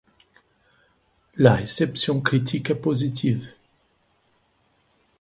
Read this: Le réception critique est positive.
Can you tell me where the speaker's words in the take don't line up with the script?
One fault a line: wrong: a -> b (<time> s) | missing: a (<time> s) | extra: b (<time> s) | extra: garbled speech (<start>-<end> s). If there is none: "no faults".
wrong: Le -> La (1.4 s)